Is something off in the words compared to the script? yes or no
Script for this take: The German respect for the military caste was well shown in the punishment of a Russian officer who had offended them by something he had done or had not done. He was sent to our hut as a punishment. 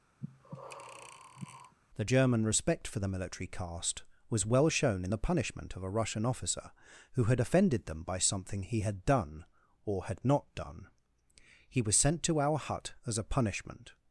no